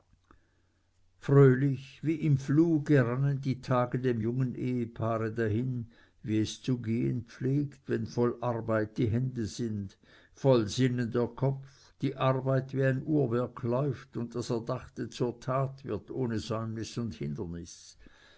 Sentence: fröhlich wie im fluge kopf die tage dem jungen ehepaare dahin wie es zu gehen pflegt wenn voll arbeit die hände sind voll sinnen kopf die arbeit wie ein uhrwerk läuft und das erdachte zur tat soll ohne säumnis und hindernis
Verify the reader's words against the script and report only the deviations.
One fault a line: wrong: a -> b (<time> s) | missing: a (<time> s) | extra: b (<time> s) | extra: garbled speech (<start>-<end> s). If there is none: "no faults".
wrong: kopf -> rannen (3.0 s)
extra: der (11.1 s)
wrong: soll -> wird (15.8 s)